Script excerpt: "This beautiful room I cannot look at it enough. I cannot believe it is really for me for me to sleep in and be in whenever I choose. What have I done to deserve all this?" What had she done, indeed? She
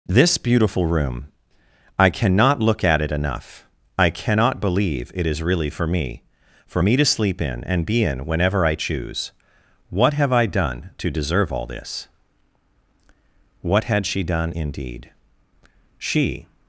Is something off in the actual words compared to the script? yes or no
no